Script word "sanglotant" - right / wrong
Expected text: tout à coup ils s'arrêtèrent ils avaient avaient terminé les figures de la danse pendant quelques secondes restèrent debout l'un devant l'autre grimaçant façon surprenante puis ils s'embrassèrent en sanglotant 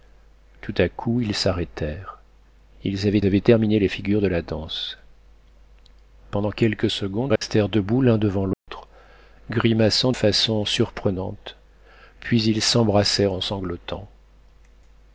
right